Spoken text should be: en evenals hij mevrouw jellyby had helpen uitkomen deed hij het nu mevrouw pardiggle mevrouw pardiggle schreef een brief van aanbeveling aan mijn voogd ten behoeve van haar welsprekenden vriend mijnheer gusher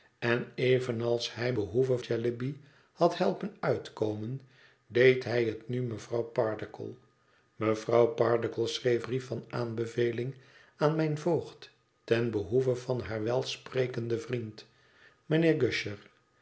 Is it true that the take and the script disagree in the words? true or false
true